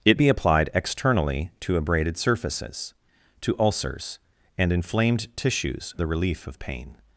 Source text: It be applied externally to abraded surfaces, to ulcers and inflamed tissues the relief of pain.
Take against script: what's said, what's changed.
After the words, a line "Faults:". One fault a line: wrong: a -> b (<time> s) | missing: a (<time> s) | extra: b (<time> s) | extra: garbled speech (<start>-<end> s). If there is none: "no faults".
It be applied externally to abraded surfaces, to ulcers and inflamed tissues the relief of pain.
Faults:
no faults